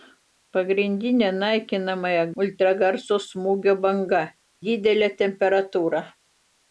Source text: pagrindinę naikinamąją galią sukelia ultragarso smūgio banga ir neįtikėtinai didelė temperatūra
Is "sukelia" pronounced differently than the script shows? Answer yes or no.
yes